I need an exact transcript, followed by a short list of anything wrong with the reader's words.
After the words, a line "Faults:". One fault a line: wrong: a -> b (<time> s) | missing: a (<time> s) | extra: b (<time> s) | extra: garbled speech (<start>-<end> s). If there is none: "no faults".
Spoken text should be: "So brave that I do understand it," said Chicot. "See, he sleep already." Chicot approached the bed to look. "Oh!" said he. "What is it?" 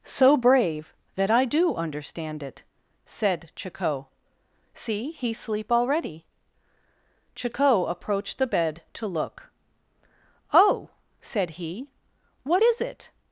"So brave that I do understand it," said Chicot. "See, he sleep already." Chicot approached the bed to look. "Oh!" said he. "What is it?"
Faults:
no faults